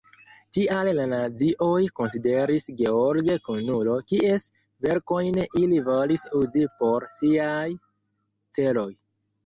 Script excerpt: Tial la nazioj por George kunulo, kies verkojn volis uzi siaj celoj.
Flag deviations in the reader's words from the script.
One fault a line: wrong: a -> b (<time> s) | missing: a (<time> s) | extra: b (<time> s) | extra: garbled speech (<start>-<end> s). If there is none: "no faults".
wrong: por -> konsideris (2.0 s)
extra: ili (5.5 s)
extra: por (6.8 s)